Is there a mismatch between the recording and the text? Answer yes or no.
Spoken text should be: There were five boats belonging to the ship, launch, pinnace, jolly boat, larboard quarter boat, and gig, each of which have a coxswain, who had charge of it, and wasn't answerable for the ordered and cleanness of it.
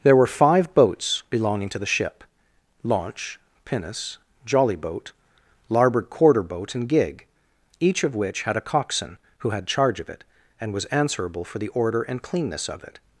yes